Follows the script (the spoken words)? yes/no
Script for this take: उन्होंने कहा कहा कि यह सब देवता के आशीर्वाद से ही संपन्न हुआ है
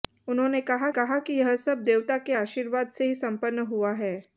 yes